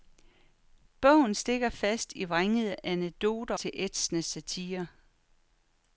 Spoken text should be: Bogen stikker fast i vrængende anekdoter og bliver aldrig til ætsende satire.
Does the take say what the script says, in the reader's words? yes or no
no